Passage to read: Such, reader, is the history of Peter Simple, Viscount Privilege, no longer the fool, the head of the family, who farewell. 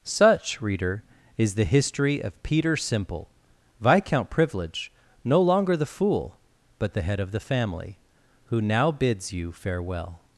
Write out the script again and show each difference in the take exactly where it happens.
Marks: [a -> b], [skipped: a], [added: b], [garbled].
Such, reader, is the history of Peter Simple, Viscount Privilege, no longer the fool, [added: but] the head of the family, who [added: now bids you] farewell.